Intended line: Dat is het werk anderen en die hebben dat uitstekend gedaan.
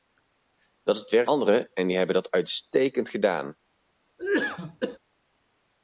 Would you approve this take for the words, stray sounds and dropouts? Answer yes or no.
no